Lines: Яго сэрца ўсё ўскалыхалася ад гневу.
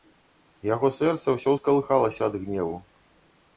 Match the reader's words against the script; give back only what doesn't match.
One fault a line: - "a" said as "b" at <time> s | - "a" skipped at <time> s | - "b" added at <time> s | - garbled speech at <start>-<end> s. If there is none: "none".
none